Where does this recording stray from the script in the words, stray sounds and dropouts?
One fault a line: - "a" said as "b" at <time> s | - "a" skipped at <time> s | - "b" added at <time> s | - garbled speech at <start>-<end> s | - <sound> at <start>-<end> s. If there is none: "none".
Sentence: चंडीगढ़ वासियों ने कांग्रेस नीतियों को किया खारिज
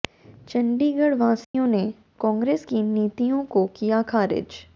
- dropout at 1.4-1.5 s
- "की" added at 2.6 s